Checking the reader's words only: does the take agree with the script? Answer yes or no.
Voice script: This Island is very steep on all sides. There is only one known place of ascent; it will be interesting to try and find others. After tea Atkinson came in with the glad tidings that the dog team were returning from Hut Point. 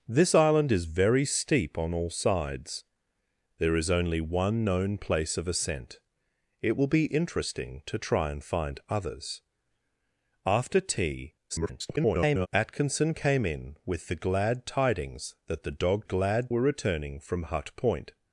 no